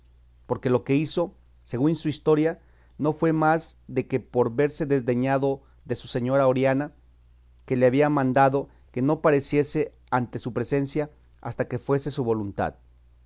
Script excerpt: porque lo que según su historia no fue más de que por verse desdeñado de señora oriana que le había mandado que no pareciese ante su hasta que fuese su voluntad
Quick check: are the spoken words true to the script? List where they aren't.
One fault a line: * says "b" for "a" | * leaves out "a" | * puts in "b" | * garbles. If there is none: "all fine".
* puts in "hizo"
* puts in "su"
* puts in "presencia"